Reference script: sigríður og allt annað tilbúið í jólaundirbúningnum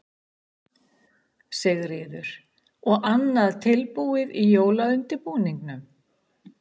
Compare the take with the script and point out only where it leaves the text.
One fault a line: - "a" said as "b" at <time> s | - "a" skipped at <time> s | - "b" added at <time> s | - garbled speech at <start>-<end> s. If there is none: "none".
- "allt" skipped at 3.1 s